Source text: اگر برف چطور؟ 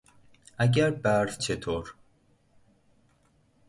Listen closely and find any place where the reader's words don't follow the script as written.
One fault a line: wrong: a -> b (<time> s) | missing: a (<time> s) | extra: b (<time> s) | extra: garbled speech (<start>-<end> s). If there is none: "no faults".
no faults